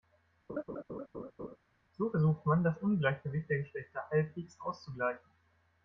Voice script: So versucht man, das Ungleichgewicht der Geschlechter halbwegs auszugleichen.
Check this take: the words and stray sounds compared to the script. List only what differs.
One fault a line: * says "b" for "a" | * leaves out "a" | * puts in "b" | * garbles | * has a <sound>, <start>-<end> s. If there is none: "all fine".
* has a laugh, 0.5-1.6 s